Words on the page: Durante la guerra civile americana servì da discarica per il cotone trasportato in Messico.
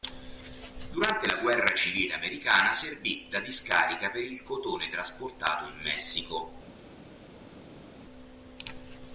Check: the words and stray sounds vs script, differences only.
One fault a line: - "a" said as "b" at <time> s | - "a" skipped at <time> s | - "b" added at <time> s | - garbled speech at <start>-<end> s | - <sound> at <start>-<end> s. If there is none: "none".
none